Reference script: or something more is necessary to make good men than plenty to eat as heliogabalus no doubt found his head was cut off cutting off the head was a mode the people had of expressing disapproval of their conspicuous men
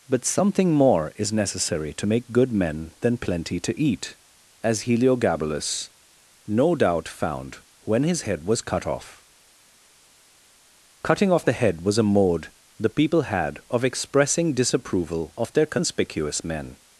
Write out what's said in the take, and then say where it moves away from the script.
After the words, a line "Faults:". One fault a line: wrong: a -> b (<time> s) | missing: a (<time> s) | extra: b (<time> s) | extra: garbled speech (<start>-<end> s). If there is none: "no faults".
but something more is necessary to make good men than plenty to eat as heliogabalus no doubt found when his head was cut off cutting off the head was a mode the people had of expressing disapproval of their conspicuous men
Faults:
wrong: or -> but (0.1 s)
extra: when (7.8 s)